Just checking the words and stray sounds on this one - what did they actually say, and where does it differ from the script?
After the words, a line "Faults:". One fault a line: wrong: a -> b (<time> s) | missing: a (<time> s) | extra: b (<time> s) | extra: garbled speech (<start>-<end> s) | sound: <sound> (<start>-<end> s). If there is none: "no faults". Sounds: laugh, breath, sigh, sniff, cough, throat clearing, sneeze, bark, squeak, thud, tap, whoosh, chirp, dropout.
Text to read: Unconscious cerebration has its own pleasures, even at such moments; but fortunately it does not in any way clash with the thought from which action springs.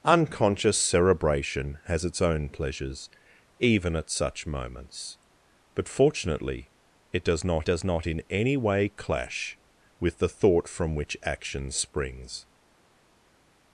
Unconscious cerebration has its own pleasures, even at such moments; but fortunately it does not does not in any way clash with the thought from which action springs.
Faults:
extra: does not (7.6 s)